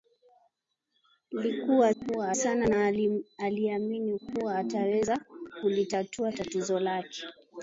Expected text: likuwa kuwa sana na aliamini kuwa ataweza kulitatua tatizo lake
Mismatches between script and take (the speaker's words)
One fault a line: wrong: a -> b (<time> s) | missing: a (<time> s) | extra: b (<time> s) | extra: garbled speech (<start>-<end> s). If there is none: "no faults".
no faults